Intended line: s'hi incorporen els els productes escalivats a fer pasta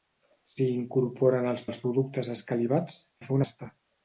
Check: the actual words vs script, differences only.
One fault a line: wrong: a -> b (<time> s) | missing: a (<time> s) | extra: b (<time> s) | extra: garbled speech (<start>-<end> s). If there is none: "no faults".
no faults